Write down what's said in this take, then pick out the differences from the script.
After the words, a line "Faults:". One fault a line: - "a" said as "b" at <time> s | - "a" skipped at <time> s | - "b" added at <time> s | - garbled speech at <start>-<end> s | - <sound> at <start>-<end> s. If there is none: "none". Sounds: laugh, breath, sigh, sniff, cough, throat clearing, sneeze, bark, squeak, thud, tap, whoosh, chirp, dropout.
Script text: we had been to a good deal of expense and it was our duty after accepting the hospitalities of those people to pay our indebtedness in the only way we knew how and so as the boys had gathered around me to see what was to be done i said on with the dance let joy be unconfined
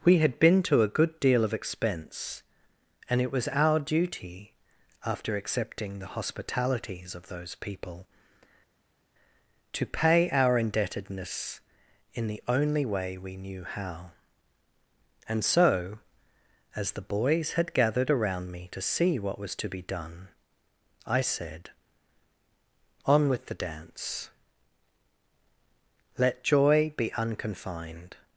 we had been to a good deal of expense and it was our duty after accepting the hospitalities of those people to pay our indebtedness in the only way we knew how and so as the boys had gathered around me to see what was to be done i said on with the dance let joy be unconfined
Faults:
none